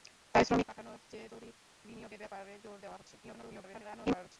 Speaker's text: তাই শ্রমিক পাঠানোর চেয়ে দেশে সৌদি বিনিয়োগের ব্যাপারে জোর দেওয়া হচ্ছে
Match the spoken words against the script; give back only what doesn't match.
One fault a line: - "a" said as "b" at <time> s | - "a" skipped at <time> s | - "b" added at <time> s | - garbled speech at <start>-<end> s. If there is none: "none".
- "দেশে" skipped at 1.3 s
- garbled speech at 3.2-4.4 s